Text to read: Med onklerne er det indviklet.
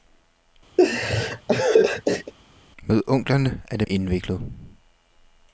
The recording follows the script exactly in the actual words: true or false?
true